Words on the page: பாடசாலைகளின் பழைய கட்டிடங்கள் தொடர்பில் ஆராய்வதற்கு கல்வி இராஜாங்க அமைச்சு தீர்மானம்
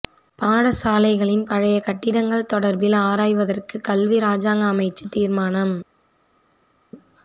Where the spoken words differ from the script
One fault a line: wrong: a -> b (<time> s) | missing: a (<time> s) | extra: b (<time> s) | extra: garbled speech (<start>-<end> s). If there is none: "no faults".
no faults